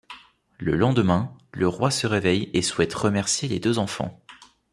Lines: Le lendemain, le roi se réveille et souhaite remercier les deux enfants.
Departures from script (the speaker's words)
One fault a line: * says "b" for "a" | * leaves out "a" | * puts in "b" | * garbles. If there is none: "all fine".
all fine